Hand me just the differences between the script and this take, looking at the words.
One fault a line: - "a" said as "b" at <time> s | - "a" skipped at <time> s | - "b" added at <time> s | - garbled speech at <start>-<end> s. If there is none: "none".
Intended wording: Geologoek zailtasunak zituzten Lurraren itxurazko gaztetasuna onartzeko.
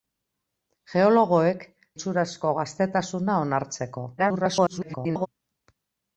- "zailtasunak zituzten Lurraren" skipped at 1.6 s
- garbled speech at 4.2-5.3 s